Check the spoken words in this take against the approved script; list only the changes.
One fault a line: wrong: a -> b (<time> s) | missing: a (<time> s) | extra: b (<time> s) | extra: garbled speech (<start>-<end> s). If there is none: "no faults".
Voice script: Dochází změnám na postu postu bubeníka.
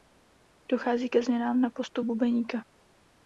extra: ke (1.1 s)
missing: postu (2.0 s)